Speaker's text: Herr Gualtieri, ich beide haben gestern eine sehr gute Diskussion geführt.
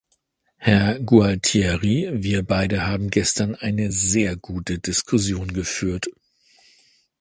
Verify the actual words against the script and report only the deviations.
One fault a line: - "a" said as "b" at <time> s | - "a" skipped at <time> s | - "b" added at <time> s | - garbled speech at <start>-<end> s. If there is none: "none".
- "ich" said as "wir" at 2.1 s